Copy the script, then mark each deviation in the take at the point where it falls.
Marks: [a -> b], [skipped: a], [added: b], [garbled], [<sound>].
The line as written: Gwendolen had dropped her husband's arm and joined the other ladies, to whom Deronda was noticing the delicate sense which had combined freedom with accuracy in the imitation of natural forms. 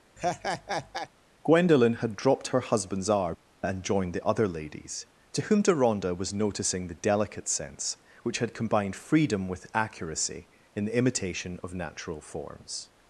[laugh] Gwendolen had dropped her husband's arm and joined the other ladies, to whom Deronda was noticing the delicate sense which had combined freedom with accuracy in the imitation of natural forms.